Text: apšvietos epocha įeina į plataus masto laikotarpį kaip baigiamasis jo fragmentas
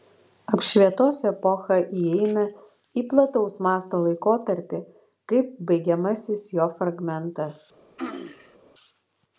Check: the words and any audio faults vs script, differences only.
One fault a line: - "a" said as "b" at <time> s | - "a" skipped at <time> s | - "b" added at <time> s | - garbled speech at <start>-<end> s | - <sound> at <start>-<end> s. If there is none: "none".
- throat clearing at 8.0-8.6 s